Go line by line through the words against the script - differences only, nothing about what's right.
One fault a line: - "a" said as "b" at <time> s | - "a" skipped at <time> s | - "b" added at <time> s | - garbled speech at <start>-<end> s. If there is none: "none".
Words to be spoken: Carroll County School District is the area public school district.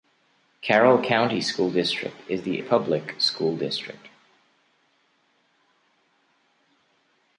- "area" skipped at 2.6 s